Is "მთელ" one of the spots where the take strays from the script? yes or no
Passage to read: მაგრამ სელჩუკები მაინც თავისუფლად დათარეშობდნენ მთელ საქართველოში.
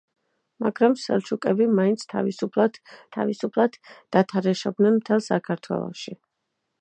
no